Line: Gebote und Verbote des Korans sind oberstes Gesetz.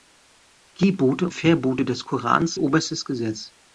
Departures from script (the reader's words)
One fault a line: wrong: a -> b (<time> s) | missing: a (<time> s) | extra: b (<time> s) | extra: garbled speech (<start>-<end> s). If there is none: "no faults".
missing: und (1.3 s)
missing: sind (2.5 s)